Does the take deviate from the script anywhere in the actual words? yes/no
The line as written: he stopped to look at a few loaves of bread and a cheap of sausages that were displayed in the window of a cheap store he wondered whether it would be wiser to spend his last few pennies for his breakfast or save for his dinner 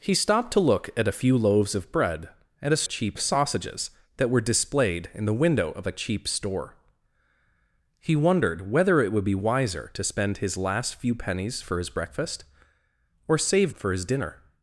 no